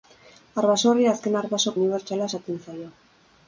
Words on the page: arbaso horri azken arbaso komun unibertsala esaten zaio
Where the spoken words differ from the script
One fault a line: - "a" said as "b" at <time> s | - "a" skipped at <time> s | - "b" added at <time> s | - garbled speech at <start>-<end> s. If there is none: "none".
- "komun" skipped at 1.7 s